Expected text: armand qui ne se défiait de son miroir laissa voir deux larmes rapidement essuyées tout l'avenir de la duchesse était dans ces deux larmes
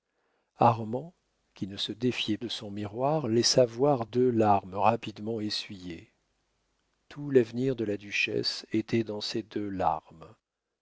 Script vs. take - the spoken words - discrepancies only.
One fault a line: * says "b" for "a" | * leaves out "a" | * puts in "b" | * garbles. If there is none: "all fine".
all fine